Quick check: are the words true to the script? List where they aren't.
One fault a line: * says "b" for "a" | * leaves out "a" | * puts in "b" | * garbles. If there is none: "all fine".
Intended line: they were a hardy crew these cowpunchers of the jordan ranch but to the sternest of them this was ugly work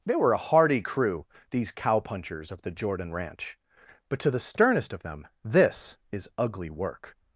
* says "is" for "was"